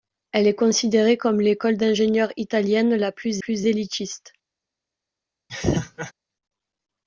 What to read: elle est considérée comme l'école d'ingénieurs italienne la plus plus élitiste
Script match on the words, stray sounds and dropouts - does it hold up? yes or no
no